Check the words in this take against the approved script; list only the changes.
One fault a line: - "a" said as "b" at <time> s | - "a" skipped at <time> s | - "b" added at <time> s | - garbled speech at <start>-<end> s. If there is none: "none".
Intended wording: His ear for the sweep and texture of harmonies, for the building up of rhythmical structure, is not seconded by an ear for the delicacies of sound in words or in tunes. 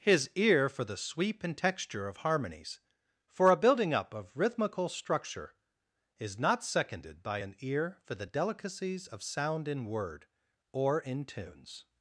- "the" said as "a" at 3.5 s
- "words" said as "word" at 9.9 s